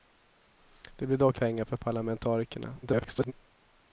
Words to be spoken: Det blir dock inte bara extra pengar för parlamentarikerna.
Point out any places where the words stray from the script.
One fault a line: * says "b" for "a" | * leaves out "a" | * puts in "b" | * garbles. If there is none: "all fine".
* leaves out "inte bara extra"
* garbles